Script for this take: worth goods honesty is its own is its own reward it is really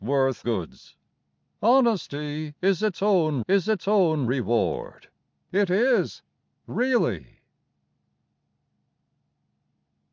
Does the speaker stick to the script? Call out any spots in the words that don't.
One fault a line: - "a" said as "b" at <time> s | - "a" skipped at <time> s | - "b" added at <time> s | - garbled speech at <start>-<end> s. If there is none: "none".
none